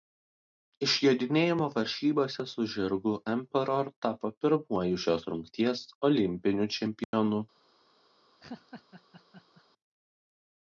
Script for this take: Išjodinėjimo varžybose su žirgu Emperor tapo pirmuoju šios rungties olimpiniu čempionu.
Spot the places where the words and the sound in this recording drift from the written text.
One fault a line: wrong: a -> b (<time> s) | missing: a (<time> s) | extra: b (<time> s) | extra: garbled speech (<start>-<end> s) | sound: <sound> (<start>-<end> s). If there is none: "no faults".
sound: dropout (7.0-7.1 s)
sound: laugh (8.4-9.6 s)